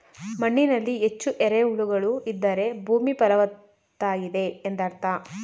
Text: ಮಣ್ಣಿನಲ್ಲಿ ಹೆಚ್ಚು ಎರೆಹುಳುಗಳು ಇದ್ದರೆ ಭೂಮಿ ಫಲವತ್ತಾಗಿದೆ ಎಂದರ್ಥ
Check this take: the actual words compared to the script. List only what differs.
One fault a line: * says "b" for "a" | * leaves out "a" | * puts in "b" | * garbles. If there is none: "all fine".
all fine